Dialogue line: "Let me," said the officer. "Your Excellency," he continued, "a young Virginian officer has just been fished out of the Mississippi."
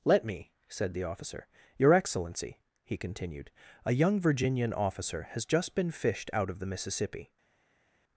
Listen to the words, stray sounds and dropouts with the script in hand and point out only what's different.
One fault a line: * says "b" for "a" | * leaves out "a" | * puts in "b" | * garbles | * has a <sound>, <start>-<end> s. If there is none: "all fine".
all fine